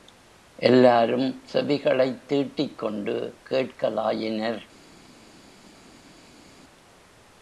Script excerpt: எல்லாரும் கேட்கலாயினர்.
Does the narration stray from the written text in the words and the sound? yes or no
yes